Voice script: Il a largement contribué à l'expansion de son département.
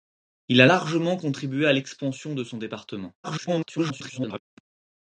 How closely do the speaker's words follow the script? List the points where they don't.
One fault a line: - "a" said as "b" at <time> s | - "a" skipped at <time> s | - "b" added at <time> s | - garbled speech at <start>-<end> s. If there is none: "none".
- garbled speech at 3.2-4.4 s